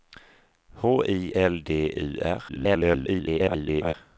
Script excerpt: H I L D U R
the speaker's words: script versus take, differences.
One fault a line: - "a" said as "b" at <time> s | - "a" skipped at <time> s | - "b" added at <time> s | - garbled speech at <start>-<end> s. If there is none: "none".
- garbled speech at 2.5-3.9 s